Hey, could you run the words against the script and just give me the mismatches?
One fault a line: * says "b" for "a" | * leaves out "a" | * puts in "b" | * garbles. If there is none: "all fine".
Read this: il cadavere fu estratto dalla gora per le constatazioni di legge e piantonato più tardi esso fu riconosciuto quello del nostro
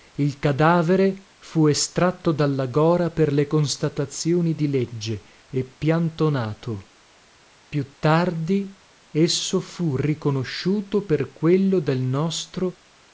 * puts in "per"